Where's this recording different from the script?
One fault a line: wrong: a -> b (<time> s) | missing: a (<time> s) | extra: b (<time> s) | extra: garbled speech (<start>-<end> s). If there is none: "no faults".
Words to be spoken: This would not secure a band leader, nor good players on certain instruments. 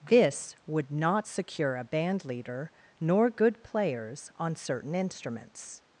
no faults